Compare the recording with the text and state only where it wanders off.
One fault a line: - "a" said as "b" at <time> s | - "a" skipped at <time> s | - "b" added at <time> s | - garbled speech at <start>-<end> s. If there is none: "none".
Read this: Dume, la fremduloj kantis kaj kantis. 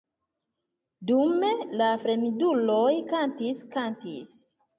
- "kaj" skipped at 3.7 s